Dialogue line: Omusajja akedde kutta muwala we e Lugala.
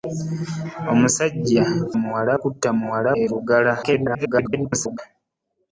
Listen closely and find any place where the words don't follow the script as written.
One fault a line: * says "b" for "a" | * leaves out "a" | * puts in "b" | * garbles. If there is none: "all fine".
* says "muwala" for "akedde"
* leaves out "we"
* garbles